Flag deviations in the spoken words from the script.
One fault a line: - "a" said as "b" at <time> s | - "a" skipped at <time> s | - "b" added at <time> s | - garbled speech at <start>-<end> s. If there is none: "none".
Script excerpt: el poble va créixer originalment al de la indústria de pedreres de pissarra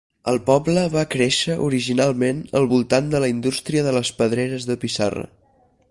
- "voltant" added at 2.7 s
- "les" added at 4.0 s